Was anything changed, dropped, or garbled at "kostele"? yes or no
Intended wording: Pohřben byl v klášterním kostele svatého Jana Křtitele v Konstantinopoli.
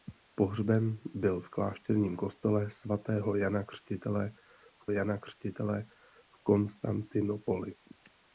no